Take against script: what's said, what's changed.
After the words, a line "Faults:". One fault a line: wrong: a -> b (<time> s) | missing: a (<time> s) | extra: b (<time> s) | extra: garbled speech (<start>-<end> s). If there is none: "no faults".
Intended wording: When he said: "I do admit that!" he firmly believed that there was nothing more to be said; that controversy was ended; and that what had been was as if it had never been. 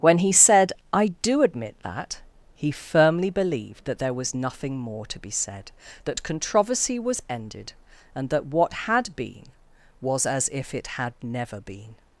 When he said: "I do admit that!" he firmly believed that there was nothing more to be said; that controversy was ended; and that what had been was as if it had never been.
Faults:
no faults